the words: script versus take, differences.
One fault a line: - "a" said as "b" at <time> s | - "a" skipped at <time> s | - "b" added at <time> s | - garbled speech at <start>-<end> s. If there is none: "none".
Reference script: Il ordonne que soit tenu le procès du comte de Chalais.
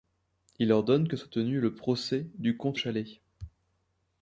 - "de" skipped at 2.8 s